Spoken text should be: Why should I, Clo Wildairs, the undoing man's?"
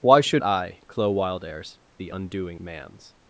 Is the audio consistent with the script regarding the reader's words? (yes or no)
yes